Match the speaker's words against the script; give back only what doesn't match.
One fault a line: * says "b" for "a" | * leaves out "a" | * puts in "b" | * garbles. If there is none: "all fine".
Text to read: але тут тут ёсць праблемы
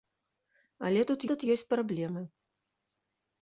all fine